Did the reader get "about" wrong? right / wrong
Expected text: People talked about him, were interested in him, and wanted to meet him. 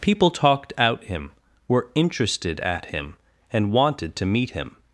wrong